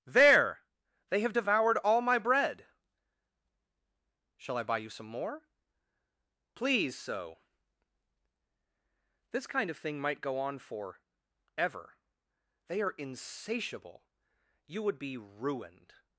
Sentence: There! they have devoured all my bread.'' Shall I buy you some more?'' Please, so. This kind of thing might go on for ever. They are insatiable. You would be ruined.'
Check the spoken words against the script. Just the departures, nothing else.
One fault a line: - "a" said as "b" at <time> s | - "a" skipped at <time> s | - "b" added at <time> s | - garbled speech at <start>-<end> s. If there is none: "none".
none